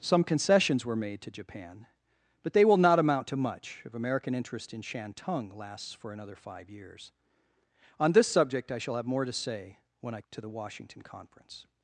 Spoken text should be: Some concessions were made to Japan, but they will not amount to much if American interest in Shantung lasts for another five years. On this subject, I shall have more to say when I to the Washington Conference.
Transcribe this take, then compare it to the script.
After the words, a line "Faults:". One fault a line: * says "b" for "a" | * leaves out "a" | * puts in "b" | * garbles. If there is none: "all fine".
Some concessions were made to Japan, but they will not amount to much if American interest in Shantung lasts for another five years. On this subject, I shall have more to say when I to the Washington Conference.
Faults:
all fine